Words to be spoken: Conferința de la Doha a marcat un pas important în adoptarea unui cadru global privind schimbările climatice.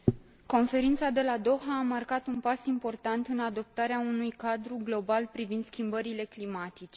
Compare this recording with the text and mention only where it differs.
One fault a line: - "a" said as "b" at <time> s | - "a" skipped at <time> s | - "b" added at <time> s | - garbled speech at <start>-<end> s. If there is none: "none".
none